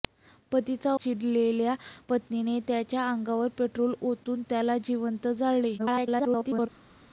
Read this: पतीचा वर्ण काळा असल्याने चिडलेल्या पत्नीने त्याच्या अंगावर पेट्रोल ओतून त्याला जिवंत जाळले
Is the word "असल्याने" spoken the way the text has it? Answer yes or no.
no